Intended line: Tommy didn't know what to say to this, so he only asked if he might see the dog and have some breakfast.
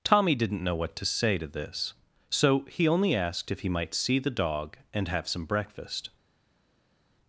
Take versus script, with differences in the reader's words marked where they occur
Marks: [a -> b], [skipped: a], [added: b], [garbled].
Tommy didn't know what to say to this, so he only asked if he might see the dog and have some breakfast.